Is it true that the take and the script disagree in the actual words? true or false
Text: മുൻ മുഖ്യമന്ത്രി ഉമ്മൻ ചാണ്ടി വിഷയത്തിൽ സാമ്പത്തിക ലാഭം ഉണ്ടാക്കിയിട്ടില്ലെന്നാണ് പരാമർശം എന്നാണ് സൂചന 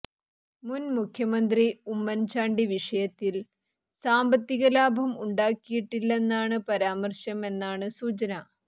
false